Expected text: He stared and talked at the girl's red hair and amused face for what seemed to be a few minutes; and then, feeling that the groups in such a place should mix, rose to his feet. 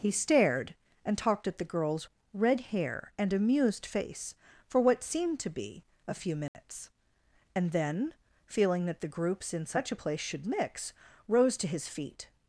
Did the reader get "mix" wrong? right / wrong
right